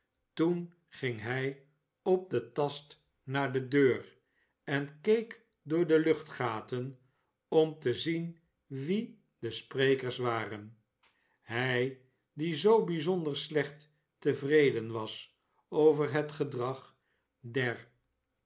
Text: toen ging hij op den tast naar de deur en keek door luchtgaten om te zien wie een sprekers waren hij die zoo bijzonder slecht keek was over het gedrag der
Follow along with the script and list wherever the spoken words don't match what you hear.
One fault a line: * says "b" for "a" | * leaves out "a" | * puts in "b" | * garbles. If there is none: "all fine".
* puts in "de"
* says "de" for "een"
* says "tevreden" for "keek"